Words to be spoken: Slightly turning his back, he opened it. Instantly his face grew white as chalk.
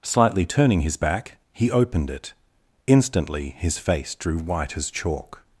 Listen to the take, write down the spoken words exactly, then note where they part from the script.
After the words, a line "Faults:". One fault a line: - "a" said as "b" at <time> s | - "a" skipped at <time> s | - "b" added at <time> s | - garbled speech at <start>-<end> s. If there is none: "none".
Slightly turning his back, he opened it. Instantly his face drew white as chalk.
Faults:
- "grew" said as "drew" at 4.2 s